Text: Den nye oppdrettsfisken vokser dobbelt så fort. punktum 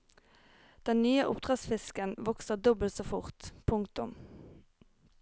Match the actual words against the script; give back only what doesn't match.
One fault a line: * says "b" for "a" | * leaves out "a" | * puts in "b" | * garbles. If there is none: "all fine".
all fine